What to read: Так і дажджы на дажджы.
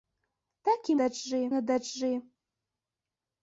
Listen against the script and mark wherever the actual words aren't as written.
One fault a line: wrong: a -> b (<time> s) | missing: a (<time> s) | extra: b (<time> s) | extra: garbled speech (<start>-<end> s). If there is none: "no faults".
no faults